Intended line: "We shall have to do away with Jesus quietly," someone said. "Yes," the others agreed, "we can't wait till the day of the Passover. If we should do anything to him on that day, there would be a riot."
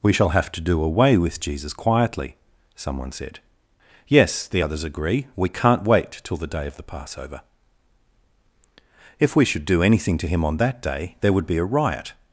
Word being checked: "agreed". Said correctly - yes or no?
no